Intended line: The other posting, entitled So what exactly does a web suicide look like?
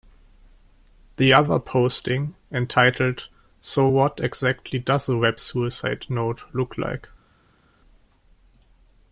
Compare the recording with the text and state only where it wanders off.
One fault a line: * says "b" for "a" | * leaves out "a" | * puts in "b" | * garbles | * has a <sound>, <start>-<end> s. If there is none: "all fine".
* puts in "note"